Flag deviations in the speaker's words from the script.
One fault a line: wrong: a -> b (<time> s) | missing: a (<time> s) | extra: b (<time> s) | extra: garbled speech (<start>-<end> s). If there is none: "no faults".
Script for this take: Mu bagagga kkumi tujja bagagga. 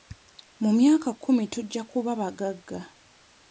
wrong: bagagga -> myaka (0.8 s)
extra: kuba (1.9 s)